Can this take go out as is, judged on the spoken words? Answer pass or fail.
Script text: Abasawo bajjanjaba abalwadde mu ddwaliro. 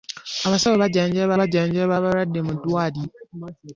fail